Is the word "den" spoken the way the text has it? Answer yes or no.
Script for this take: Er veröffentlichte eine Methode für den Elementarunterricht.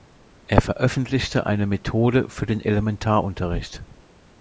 yes